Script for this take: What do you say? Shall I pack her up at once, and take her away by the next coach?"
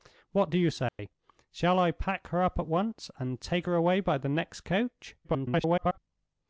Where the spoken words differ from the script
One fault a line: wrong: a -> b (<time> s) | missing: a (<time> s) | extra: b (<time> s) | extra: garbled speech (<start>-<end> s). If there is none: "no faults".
extra: garbled speech (5.2-6.0 s)